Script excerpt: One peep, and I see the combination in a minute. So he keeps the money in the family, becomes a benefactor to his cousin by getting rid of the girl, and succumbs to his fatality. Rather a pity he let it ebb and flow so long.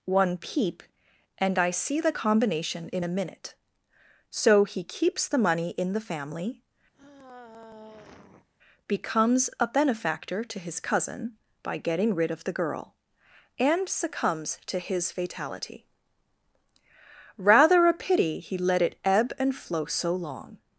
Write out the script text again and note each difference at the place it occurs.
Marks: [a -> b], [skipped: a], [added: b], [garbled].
One peep, and I see the combination in a minute. So he keeps the money in the family, becomes a benefactor to his cousin by getting rid of the girl, and succumbs to his fatality. Rather a pity he let it ebb and flow so long.